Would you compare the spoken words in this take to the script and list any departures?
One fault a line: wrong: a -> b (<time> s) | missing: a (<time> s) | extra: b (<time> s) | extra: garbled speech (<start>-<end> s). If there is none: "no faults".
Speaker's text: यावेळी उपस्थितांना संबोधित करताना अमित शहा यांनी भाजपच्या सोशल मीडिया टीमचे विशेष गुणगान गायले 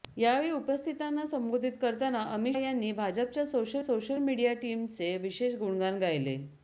missing: शहा (2.5 s)
extra: सोशल (3.8 s)